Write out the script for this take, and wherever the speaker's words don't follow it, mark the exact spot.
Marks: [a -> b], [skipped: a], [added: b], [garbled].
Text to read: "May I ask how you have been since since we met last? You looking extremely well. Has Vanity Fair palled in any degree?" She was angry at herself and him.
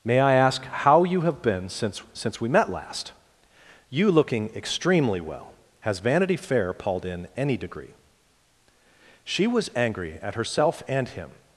"May I ask how you have been since since we met last? You looking extremely well. Has Vanity Fair palled in any degree?" She was angry at herself and him.